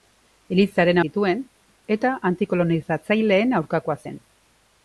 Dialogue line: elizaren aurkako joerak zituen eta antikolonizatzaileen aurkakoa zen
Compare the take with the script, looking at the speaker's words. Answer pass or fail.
fail